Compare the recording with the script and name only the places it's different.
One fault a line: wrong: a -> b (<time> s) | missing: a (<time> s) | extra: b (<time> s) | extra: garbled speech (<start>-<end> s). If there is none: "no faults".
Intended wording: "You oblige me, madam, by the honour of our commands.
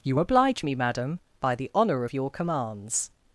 wrong: our -> your (2.1 s)